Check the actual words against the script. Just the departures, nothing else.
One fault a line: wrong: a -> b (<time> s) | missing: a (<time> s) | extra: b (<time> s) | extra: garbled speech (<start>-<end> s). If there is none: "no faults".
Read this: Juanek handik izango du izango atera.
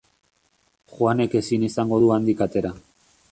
wrong: handik -> ezin (1.4 s)
wrong: izango -> handik (2.2 s)